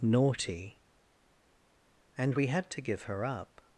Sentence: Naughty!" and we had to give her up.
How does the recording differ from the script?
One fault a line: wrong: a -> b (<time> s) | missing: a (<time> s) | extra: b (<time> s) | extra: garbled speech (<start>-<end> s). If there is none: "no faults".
no faults